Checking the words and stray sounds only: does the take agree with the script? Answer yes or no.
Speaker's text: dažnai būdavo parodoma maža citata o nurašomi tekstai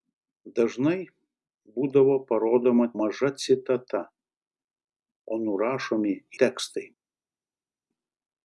yes